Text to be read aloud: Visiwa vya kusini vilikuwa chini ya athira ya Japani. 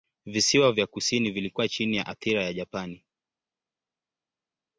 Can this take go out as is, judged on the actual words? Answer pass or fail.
pass